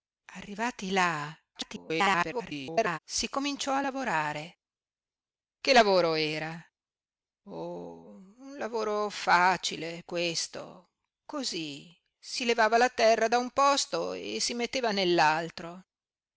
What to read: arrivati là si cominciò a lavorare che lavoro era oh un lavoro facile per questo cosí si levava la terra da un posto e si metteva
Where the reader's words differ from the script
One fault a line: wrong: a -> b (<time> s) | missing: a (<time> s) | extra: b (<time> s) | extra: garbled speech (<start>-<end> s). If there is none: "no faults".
extra: garbled speech (1.5-3.0 s)
missing: per (10.0 s)